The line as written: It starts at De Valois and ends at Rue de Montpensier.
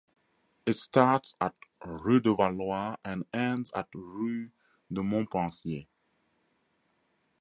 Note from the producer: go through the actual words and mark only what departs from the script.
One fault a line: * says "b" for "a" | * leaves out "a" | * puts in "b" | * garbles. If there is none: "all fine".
* puts in "Rue"